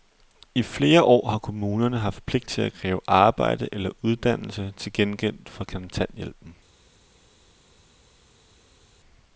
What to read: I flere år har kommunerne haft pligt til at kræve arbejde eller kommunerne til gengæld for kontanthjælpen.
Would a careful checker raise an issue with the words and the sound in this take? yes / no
yes